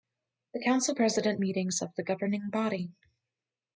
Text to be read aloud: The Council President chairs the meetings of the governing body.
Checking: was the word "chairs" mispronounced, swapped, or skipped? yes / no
yes